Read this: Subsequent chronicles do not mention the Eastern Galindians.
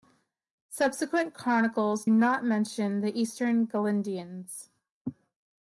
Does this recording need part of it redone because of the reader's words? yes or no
yes